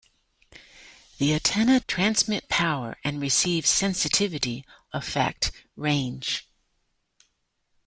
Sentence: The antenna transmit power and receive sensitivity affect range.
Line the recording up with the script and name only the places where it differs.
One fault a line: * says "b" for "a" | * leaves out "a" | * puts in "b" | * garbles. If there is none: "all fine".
all fine